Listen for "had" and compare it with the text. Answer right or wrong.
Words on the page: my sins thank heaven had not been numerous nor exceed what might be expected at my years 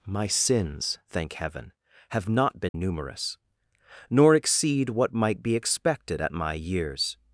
wrong